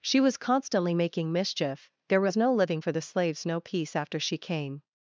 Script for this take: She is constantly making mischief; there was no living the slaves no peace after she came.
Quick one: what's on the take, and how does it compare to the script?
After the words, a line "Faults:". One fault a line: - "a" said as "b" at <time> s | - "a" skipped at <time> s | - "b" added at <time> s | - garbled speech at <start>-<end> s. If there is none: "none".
She was constantly making mischief; there was no living for the slaves no peace after she came.
Faults:
- "is" said as "was" at 0.2 s
- "for" added at 2.8 s